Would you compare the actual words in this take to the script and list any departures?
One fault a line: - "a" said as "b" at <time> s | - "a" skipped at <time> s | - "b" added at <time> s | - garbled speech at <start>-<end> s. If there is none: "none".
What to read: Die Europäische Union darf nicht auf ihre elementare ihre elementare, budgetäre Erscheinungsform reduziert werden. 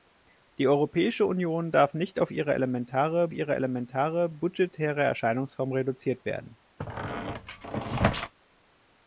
none